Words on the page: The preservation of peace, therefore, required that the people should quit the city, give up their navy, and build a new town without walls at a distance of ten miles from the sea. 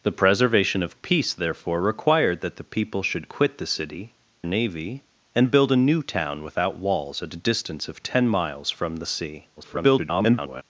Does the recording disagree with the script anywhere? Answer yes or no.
yes